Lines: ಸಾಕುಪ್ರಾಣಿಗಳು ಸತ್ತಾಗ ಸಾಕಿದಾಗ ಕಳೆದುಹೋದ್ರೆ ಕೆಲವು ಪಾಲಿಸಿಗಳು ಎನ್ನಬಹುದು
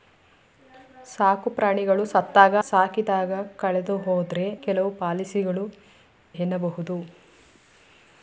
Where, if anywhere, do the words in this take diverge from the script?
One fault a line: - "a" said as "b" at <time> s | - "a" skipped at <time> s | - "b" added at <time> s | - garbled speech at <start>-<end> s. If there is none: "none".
none